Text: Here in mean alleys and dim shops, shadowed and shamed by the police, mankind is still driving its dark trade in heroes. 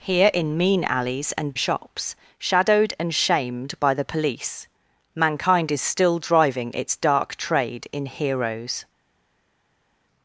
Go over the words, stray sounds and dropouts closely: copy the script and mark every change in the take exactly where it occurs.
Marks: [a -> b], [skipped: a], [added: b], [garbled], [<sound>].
Here in mean alleys and [skipped: dim] shops, shadowed and shamed by the police, mankind is still driving its dark trade in heroes.